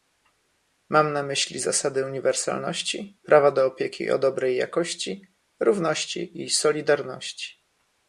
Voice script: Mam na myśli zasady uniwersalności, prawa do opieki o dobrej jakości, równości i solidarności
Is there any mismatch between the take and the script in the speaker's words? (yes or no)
no